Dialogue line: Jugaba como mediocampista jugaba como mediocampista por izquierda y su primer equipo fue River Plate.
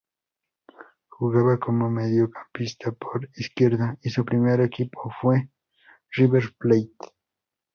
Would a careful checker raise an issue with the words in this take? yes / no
yes